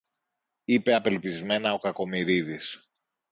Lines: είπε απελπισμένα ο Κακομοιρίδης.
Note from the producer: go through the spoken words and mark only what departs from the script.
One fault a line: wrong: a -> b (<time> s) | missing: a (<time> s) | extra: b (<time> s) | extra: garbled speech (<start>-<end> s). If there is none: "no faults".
no faults